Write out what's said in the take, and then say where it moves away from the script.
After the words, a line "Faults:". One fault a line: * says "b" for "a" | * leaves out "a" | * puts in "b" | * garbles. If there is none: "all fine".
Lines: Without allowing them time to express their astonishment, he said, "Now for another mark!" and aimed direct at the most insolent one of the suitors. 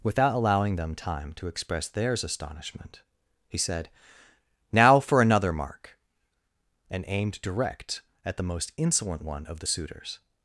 Without allowing them time to express theirs astonishment, he said, "Now for another mark!" and aimed direct at the most insolent one of the suitors.
Faults:
* says "theirs" for "their"